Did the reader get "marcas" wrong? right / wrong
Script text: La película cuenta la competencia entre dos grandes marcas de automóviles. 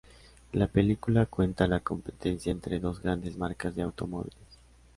right